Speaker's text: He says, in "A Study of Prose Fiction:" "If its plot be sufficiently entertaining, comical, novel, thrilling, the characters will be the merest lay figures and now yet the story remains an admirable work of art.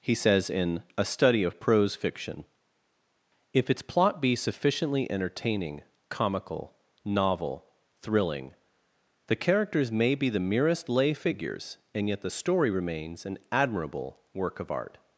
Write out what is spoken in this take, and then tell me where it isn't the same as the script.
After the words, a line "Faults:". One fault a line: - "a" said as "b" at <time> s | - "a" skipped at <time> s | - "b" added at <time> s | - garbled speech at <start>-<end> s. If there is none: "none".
He says, in "A Study of Prose Fiction:" "If its plot be sufficiently entertaining, comical, novel, thrilling, the characters may be the merest lay figures and yet the story remains an admirable work of art.
Faults:
- "will" said as "may" at 9.9 s
- "now" skipped at 12.1 s